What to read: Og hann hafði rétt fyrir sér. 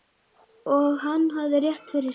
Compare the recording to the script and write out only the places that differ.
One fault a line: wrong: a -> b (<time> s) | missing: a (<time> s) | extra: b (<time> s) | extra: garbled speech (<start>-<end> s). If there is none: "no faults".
no faults